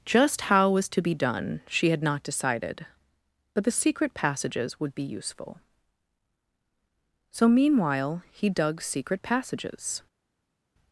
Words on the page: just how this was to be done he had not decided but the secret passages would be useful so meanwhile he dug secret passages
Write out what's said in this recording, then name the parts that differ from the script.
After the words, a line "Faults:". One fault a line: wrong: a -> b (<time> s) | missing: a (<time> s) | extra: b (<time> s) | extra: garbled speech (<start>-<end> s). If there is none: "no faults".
just how was to be done she had not decided but the secret passages would be useful so meanwhile he dug secret passages
Faults:
missing: this (0.7 s)
wrong: he -> she (1.7 s)